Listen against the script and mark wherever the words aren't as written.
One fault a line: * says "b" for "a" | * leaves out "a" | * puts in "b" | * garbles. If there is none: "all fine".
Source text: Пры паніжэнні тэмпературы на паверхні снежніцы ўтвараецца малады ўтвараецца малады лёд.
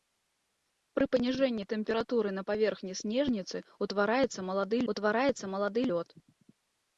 all fine